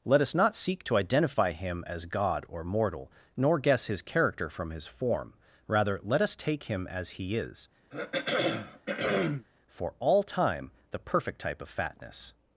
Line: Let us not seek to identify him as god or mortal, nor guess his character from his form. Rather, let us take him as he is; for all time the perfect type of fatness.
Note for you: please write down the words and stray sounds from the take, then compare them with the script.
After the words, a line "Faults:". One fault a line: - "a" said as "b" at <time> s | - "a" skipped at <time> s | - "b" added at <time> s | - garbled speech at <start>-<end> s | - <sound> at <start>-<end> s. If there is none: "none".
Let us not seek to identify him as god or mortal, nor guess his character from his form. Rather, let us take him as he is; for all time the perfect type of fatness.
Faults:
- throat clearing at 7.9-9.5 s